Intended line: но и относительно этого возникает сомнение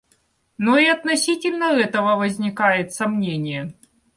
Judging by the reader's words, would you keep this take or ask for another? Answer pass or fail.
pass